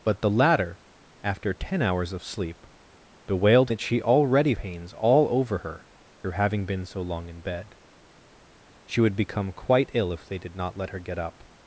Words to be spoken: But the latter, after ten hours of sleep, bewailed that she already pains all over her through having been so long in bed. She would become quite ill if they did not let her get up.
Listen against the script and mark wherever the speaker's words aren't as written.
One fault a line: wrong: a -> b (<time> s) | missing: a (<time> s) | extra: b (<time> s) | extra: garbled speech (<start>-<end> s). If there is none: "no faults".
no faults